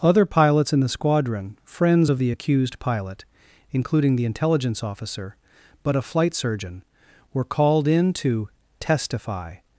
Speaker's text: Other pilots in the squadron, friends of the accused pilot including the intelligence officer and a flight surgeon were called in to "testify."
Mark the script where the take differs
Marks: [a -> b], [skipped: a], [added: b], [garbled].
Other pilots in the squadron, friends of the accused pilot including the intelligence officer [and -> but] a flight surgeon were called in to "testify."